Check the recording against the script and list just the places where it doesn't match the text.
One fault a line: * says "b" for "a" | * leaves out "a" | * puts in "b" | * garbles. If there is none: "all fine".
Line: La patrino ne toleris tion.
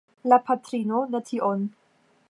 * leaves out "toleris"